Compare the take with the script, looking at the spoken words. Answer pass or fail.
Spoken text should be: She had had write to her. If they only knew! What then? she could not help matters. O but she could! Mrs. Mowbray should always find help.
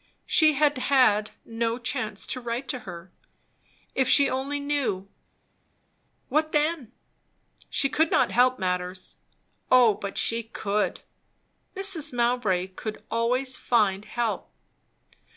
fail